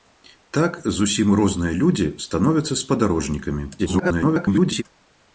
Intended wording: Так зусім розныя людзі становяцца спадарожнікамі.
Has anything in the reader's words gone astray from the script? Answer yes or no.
yes